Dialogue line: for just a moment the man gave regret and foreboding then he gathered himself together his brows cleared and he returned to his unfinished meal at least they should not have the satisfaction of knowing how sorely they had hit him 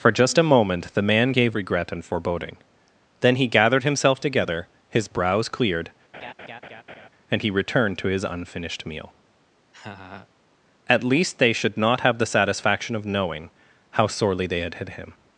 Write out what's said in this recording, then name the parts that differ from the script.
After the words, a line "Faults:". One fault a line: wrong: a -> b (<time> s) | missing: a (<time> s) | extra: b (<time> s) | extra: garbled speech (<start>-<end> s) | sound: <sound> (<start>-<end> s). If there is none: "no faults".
for just a moment the man gave regret and foreboding then he gathered himself together his brows cleared and he returned to his unfinished meal at least they should not have the satisfaction of knowing how sorely they had hit him
Faults:
sound: laugh (6.1-7.1 s)
sound: laugh (9.7-10.3 s)